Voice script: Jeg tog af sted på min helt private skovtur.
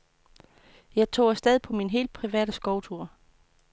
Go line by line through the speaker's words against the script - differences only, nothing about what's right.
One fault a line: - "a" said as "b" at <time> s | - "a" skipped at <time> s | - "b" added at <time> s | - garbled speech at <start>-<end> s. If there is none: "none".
none